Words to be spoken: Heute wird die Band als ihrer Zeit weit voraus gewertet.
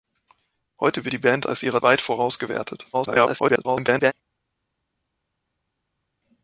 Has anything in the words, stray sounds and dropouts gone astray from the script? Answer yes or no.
yes